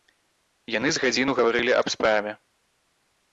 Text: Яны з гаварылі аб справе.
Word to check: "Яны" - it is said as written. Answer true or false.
true